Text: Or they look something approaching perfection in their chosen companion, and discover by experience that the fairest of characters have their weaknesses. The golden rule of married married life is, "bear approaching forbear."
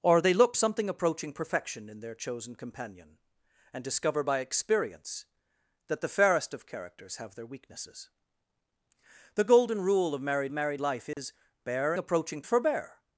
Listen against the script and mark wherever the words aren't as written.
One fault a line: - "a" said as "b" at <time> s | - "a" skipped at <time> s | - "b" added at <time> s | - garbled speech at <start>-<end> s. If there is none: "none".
none